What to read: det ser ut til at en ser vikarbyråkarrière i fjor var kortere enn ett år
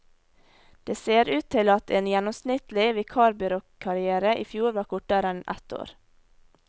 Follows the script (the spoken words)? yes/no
no